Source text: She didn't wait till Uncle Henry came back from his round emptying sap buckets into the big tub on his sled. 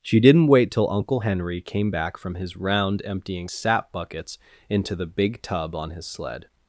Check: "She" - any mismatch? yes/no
no